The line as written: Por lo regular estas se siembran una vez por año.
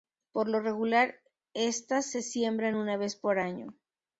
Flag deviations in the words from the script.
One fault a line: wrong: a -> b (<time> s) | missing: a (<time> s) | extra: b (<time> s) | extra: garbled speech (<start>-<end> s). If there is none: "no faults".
no faults